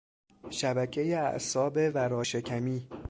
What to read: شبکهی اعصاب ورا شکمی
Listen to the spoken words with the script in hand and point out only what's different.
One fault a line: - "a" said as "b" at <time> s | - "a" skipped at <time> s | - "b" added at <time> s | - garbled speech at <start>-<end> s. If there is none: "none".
none